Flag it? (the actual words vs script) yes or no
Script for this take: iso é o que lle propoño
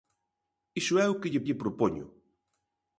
yes